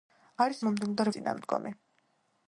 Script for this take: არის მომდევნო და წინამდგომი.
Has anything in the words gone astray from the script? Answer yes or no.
no